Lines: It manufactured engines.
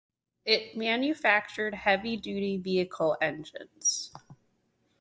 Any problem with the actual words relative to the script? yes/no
yes